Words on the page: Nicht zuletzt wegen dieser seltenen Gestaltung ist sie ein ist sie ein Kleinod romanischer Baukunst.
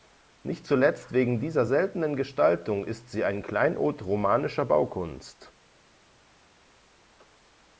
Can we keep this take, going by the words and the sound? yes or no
no